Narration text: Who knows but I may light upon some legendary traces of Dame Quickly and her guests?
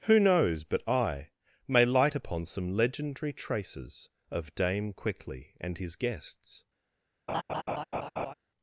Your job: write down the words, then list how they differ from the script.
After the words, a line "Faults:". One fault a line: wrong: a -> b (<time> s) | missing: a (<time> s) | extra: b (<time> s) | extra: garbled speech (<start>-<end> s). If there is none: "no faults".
Who knows but I may light upon some legendary traces of Dame Quickly and his guests?
Faults:
wrong: her -> his (5.7 s)